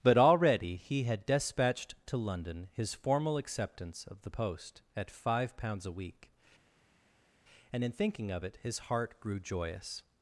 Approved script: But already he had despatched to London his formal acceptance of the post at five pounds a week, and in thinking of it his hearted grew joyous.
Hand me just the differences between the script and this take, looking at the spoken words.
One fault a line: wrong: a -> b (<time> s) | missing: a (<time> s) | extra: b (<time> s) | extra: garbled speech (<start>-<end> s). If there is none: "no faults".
wrong: hearted -> heart (8.8 s)